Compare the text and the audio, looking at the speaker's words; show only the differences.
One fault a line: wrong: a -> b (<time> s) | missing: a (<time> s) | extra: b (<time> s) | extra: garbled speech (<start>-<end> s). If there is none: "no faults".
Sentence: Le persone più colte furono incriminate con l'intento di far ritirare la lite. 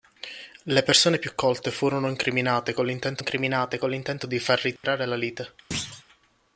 extra: incriminate con l'intento (3.2 s)